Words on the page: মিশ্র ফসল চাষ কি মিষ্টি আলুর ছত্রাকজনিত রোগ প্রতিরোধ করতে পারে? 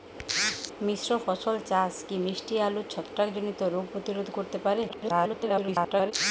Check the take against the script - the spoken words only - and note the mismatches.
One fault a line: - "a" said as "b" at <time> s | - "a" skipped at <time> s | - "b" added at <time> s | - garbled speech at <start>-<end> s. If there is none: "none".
- garbled speech at 4.9-6.1 s